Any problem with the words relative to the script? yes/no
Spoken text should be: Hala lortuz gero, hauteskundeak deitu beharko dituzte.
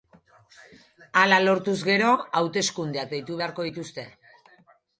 no